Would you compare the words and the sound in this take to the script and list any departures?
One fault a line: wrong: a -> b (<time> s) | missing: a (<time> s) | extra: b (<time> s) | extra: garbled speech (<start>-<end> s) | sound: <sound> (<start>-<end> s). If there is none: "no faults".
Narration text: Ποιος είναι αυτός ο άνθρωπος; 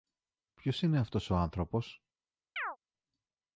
sound: chirp (2.6-2.8 s)